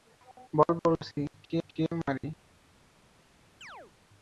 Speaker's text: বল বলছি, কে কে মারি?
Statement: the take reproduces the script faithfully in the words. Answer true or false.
true